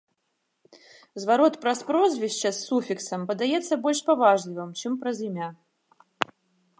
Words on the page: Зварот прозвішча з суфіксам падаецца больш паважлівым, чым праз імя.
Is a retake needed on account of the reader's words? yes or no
yes